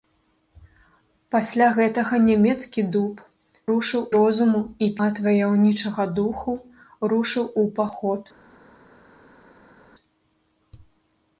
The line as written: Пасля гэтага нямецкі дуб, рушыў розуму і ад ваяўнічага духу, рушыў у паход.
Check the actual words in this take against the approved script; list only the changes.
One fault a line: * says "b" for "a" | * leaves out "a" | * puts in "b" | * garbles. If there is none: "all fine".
all fine